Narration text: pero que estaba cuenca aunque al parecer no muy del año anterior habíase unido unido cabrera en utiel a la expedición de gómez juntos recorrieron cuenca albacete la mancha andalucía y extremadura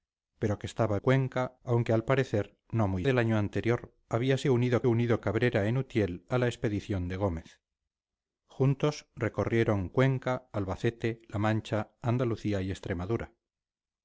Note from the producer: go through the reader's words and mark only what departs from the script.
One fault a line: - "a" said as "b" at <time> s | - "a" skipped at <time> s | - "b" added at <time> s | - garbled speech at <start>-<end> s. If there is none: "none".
none